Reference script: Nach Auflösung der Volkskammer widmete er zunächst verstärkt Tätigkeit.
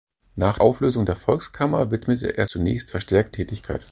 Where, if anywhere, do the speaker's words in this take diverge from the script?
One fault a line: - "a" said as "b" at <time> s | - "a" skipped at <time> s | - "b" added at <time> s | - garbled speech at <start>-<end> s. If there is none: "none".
none